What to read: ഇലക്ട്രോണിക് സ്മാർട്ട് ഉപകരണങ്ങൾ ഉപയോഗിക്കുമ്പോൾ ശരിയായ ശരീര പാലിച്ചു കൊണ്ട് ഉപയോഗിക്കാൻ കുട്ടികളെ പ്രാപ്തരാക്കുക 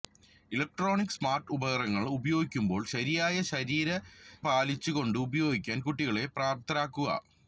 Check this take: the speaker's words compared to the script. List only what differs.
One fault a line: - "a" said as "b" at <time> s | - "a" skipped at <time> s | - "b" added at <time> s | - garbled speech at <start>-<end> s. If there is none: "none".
none